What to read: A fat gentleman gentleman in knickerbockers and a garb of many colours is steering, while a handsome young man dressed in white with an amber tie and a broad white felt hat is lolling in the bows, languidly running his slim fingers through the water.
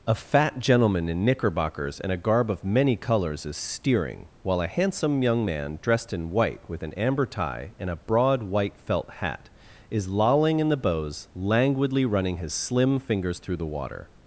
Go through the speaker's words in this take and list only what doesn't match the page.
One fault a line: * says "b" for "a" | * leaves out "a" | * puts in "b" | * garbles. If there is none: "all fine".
* leaves out "gentleman"